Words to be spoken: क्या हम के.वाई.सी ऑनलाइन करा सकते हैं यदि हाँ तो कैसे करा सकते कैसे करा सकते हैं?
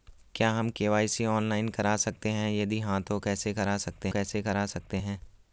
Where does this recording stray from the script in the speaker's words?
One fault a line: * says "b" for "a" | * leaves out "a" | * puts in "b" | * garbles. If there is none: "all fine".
all fine